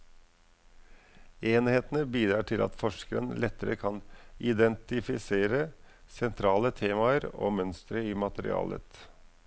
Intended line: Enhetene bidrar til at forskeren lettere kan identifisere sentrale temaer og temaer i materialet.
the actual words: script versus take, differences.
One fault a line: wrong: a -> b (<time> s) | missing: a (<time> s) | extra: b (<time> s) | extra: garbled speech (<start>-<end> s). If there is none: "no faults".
wrong: temaer -> mønstre (7.6 s)